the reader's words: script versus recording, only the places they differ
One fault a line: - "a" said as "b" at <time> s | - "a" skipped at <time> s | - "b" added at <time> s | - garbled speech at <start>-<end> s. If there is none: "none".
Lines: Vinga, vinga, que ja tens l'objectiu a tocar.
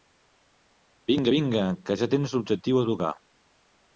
none